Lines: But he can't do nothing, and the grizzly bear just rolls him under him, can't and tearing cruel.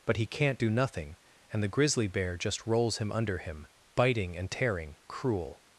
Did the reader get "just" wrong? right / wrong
right